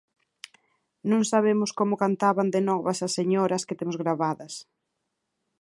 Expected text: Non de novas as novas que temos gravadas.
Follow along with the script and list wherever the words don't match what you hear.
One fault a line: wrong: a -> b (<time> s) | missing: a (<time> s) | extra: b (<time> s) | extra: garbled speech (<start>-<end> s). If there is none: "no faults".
extra: sabemos como cantaban (1.3 s)
wrong: novas -> señoras (3.2 s)